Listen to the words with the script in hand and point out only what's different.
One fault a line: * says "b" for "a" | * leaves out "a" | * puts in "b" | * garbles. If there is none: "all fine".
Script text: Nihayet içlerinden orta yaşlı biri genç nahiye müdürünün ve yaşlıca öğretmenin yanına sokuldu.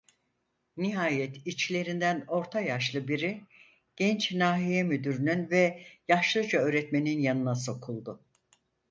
all fine